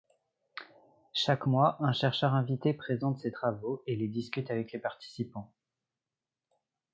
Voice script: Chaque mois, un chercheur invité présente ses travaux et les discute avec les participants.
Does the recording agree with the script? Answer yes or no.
yes